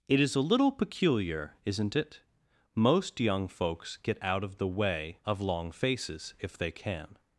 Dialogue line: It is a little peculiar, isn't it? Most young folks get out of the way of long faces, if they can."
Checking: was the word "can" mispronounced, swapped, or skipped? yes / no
no